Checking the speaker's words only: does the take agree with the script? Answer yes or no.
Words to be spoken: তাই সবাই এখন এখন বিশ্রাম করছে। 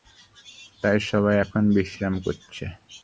no